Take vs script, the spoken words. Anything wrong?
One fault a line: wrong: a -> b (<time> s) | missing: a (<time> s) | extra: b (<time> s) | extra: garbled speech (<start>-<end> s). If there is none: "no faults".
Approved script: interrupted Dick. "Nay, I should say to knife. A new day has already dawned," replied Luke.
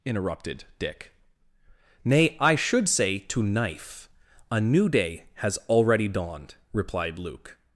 no faults